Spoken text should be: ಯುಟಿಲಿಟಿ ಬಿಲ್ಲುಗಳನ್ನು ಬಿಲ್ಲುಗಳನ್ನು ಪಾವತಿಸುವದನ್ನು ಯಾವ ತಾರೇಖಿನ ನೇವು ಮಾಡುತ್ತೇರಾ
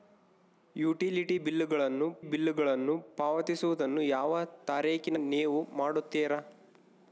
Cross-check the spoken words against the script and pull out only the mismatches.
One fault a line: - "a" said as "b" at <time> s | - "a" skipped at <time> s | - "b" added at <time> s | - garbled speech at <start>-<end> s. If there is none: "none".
none